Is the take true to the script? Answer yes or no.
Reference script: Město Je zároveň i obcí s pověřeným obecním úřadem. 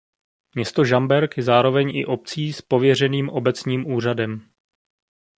no